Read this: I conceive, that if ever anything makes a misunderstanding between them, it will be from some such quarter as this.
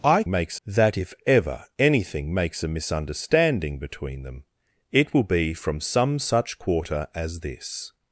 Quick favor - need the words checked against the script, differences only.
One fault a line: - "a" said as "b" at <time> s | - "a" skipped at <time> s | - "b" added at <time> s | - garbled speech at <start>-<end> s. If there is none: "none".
- "conceive" said as "makes" at 0.3 s